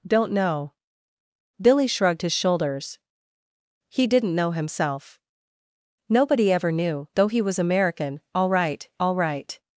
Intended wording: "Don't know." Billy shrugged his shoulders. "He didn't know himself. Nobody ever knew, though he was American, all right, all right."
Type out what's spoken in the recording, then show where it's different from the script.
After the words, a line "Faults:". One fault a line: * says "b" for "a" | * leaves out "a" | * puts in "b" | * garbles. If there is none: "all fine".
"Don't know." Billy shrugged his shoulders. "He didn't know himself. Nobody ever knew, though he was American, all right, all right."
Faults:
all fine